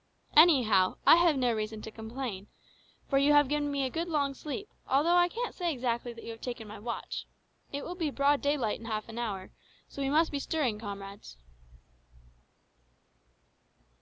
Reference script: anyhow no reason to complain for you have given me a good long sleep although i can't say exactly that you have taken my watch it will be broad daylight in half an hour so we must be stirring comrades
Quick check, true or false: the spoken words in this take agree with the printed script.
false